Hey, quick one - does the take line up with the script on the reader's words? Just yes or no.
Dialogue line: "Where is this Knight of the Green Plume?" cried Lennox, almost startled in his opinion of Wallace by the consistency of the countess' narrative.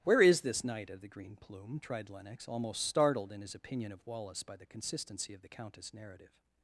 no